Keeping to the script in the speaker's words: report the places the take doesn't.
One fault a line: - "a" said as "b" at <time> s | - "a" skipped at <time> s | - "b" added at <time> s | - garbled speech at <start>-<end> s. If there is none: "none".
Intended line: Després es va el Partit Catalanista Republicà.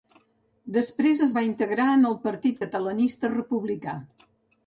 - "integrar en" added at 1.5 s